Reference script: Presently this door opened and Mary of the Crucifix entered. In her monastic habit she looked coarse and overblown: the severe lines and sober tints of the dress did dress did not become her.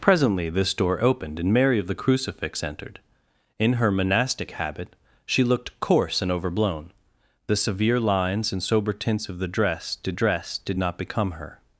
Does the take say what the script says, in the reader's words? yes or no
yes